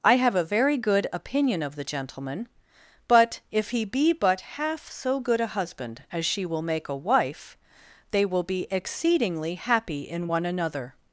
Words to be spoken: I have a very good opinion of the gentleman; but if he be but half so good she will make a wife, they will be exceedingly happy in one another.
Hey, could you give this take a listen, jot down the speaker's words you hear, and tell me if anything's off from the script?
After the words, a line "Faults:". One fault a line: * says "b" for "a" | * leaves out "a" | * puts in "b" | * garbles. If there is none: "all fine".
I have a very good opinion of the gentleman; but if he be but half so good a husband as she will make a wife, they will be exceedingly happy in one another.
Faults:
* puts in "a husband as"